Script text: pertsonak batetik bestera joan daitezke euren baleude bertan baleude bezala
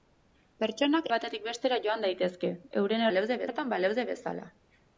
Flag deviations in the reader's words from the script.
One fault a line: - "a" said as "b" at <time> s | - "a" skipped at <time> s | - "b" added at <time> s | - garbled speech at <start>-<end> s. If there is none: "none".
none